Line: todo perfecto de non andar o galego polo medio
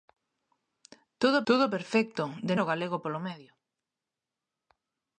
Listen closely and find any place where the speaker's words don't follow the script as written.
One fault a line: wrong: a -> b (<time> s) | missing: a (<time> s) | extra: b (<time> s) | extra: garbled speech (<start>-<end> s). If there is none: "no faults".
extra: todo (1.5 s)
missing: non andar (2.6 s)